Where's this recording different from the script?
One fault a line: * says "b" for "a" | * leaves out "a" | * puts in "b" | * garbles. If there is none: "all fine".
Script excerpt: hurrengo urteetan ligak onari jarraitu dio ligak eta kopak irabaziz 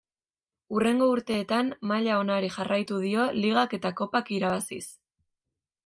* says "maila" for "ligak"